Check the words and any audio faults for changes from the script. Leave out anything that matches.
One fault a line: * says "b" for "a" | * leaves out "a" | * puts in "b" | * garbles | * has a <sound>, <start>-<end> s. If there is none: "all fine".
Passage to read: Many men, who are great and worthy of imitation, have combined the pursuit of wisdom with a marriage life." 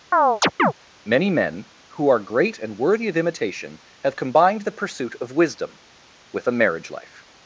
* has a chirp, 0.1-0.7 s